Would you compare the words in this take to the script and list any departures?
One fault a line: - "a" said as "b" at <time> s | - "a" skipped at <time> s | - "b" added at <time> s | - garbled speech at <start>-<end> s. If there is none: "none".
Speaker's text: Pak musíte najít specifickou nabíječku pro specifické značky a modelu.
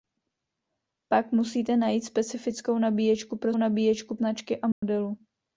- "specifické" said as "nabíječku" at 3.6 s